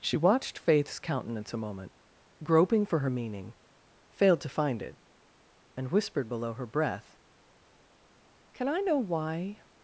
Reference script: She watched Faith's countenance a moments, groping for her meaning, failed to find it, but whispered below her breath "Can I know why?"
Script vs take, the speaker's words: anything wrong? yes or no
yes